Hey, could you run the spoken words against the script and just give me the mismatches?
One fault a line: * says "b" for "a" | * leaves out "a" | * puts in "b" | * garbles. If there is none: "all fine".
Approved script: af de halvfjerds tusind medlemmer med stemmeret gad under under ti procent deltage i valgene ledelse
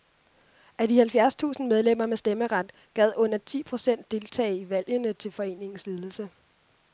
* leaves out "under"
* puts in "til foreningens"